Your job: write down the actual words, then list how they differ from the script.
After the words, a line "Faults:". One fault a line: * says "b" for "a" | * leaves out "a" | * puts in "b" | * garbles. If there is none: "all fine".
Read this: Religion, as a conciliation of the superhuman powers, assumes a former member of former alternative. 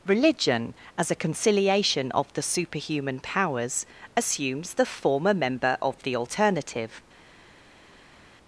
Religion, as a conciliation of the superhuman powers, assumes the former member of the alternative.
Faults:
* says "the" for "a"
* says "the" for "former"